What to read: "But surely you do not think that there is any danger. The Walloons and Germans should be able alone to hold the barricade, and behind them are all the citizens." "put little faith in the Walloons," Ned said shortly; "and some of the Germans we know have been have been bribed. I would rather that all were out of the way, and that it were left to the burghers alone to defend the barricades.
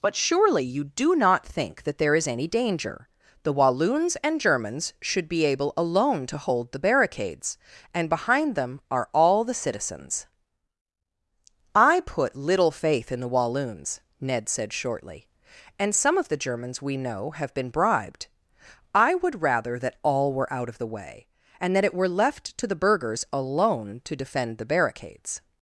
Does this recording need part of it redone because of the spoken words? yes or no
yes